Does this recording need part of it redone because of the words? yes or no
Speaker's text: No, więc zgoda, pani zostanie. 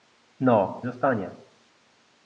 yes